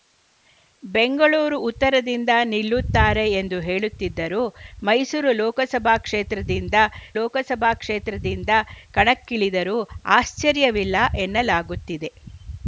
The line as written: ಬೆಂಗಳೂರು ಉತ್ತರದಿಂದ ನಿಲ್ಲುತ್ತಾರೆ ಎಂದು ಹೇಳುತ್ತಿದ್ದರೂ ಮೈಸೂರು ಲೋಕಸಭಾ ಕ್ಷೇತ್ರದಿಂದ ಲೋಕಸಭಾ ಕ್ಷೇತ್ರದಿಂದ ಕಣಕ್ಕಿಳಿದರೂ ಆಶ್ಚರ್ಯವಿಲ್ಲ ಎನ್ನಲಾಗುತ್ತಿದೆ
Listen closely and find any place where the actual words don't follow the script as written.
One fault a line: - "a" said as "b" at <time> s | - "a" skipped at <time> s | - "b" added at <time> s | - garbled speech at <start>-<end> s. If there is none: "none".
none